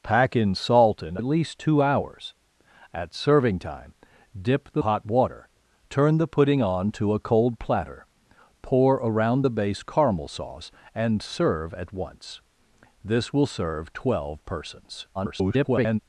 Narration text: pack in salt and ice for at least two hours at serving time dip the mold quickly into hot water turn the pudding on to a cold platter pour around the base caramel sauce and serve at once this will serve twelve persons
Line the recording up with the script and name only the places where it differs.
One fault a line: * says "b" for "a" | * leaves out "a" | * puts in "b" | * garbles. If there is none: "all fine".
* leaves out "ice for"
* leaves out "mold quickly into"
* garbles